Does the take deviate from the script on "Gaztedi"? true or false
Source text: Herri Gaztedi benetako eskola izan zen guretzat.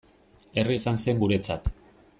true